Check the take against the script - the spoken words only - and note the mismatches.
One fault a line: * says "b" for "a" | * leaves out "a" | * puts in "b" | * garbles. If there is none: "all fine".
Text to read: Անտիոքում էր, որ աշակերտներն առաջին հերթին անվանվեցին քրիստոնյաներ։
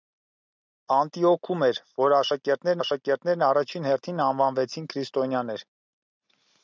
* puts in "աշակերտներն"